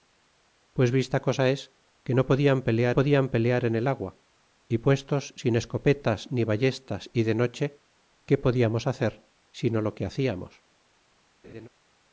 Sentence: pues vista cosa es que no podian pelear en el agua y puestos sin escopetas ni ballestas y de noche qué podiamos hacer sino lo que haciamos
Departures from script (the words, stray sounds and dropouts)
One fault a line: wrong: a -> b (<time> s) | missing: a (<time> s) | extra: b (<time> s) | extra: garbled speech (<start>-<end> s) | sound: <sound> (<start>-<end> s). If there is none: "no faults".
extra: podian pelear (2.9 s)
sound: laugh (11.4-11.7 s)